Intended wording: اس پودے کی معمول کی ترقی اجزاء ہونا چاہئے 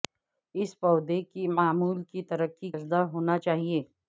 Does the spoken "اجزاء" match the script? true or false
true